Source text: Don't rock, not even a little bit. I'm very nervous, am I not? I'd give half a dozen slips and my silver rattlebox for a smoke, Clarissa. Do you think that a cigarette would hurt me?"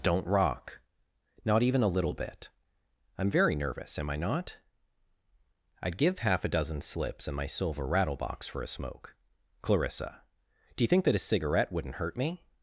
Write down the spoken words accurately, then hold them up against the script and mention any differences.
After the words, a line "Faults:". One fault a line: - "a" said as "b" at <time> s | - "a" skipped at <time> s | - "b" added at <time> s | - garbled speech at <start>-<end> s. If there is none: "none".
Don't rock, not even a little bit. I'm very nervous, am I not? I'd give half a dozen slips and my silver rattlebox for a smoke, Clarissa. Do you think that a cigarette wouldn't hurt me?"
Faults:
- "would" said as "wouldn't" at 11.7 s